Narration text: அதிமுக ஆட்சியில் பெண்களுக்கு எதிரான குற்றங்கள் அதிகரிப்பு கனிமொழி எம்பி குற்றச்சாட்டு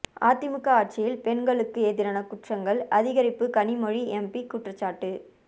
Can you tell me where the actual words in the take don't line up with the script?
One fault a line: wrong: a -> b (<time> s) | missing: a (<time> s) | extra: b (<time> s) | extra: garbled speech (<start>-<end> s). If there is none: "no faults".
no faults